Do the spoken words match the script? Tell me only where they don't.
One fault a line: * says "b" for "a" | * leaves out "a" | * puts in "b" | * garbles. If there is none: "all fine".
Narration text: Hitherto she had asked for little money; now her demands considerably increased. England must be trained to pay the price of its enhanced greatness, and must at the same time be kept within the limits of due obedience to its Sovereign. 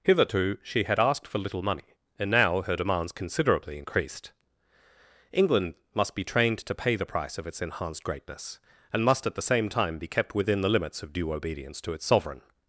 * puts in "and"